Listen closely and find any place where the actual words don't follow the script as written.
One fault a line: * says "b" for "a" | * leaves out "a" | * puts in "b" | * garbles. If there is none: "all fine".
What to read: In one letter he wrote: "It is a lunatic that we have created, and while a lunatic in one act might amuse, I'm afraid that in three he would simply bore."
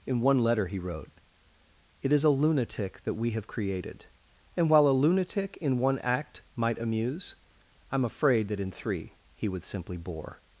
all fine